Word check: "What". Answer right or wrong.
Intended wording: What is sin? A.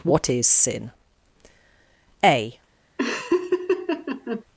right